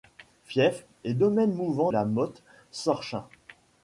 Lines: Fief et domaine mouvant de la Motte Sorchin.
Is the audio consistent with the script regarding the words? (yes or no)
no